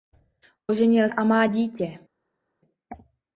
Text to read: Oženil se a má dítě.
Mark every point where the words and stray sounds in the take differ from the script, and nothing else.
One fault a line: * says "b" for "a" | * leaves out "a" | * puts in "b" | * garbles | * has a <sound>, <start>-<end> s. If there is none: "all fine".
* leaves out "se"